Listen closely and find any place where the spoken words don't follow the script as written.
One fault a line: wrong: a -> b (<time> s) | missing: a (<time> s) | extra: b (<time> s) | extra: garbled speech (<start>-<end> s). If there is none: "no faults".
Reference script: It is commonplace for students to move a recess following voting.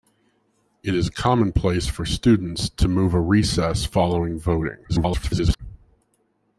extra: garbled speech (4.9-5.6 s)